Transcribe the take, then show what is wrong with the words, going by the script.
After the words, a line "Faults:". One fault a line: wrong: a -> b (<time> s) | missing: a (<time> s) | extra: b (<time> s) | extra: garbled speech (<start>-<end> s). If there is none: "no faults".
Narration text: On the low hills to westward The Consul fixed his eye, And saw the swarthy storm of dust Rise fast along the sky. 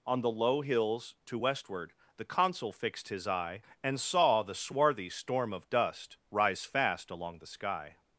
On the low hills to westward The Consul fixed his eye, And saw the swarthy storm of dust Rise fast along the sky.
Faults:
no faults